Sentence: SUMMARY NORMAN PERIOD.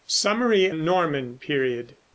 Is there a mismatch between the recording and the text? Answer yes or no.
no